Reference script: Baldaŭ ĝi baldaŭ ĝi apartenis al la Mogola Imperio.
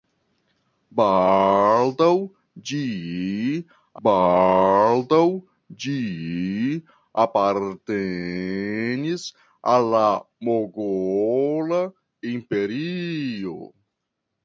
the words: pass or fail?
pass